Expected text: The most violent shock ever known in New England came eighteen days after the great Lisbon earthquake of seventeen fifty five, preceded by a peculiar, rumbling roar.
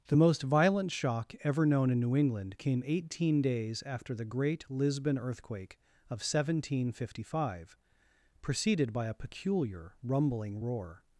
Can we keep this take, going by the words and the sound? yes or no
yes